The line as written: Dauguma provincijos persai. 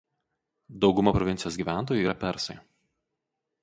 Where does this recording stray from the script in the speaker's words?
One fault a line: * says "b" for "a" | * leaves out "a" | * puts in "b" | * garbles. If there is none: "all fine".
* puts in "gyventojų yra"